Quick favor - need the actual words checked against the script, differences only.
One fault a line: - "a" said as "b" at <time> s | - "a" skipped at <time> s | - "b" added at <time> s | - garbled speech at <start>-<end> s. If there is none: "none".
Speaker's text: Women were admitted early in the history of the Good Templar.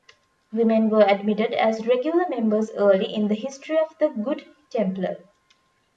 - "as regular members" added at 1.5 s